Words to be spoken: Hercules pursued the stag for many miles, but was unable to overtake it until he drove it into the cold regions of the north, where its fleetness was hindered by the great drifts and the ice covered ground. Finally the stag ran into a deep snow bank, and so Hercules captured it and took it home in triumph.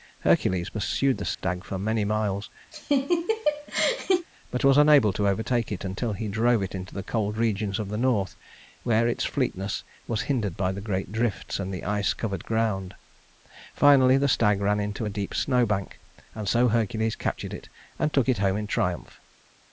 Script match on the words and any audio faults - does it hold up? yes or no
no